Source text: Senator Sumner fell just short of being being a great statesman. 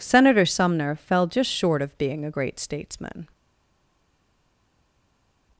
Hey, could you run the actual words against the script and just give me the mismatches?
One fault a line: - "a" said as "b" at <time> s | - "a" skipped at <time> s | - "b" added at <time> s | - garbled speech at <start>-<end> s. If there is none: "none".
- "being" skipped at 2.2 s